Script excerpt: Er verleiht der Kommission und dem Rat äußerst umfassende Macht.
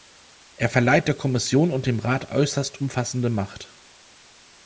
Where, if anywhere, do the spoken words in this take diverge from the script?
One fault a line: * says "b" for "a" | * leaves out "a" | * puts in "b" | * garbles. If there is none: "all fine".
all fine